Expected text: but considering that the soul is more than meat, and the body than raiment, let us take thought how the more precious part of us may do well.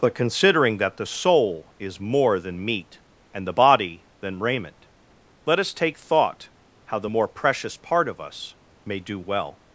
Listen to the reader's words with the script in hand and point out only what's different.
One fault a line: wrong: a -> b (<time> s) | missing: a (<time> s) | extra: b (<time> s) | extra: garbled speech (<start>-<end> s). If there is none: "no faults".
no faults